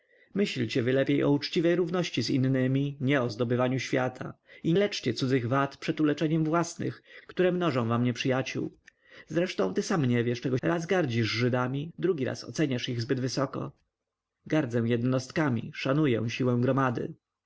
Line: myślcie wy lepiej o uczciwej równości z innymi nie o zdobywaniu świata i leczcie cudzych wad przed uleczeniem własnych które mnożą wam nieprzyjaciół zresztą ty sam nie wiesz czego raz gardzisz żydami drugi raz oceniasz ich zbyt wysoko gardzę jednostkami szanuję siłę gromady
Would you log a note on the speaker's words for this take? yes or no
no